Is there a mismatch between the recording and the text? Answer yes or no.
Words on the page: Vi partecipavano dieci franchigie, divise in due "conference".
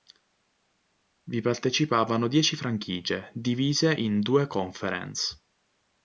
no